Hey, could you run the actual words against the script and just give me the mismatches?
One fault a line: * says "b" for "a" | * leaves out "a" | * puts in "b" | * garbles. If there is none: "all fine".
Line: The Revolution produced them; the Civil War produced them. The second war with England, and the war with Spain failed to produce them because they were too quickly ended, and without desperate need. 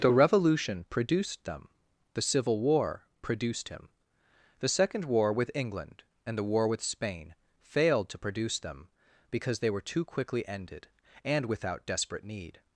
* says "him" for "them"